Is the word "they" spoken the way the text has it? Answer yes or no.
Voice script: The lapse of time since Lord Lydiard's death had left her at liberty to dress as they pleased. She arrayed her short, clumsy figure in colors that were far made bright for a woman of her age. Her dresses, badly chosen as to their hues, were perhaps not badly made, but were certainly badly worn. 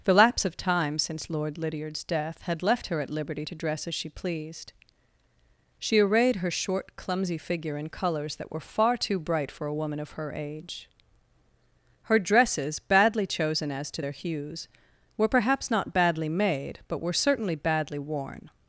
no